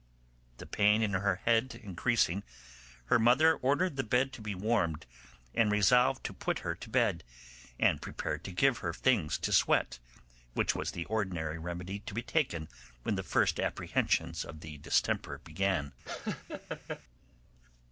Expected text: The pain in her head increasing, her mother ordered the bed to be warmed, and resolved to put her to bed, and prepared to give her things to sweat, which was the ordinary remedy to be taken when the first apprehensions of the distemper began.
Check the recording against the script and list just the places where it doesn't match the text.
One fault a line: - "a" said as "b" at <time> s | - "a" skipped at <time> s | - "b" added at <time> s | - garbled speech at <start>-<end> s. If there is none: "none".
none